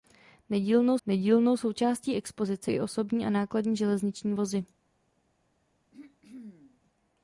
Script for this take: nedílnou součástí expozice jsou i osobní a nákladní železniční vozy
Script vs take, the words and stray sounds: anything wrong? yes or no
yes